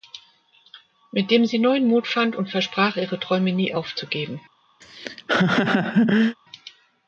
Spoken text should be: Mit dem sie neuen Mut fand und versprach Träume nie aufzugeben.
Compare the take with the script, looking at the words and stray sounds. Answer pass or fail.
fail